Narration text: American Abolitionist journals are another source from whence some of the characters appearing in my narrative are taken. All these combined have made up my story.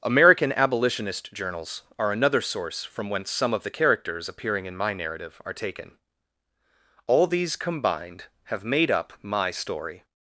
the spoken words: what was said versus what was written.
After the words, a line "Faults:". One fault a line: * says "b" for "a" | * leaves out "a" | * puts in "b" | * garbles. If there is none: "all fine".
American Abolitionist journals are another source from whence some of the characters appearing in my narrative are taken. All these combined have made up my story.
Faults:
all fine